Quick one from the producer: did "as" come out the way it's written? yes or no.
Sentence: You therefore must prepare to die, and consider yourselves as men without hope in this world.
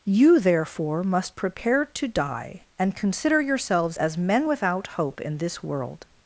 yes